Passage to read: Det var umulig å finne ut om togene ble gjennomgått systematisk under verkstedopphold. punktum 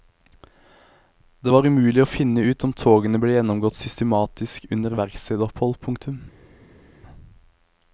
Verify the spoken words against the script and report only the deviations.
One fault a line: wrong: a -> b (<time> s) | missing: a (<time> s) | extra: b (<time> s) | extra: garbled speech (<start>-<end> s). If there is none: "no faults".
no faults